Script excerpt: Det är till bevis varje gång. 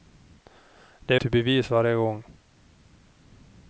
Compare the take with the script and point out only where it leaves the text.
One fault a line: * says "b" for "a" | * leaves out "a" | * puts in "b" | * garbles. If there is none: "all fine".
all fine